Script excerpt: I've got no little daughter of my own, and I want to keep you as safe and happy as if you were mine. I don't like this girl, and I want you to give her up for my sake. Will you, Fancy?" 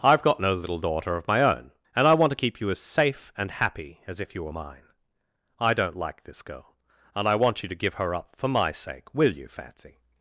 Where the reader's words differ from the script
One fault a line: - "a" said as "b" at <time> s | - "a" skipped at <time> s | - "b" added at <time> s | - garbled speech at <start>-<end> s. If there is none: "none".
none